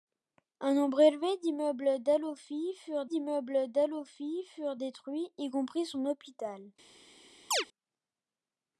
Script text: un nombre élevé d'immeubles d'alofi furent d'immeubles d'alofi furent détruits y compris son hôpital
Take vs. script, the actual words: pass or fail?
pass